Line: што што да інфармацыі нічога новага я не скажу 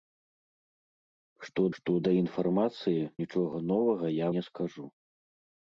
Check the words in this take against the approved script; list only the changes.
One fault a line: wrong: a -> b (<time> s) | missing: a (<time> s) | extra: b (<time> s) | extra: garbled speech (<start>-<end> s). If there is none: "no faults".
no faults